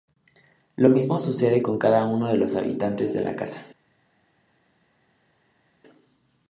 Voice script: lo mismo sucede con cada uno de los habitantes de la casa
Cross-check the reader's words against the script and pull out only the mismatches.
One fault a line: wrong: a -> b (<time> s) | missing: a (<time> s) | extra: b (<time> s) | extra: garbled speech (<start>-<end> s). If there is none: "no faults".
no faults